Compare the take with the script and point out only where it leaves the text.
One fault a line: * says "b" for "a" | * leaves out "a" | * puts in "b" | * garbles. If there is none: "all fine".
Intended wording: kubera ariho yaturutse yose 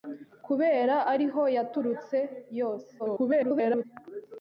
* garbles